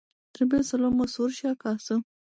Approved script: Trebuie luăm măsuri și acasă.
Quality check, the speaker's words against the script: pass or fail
fail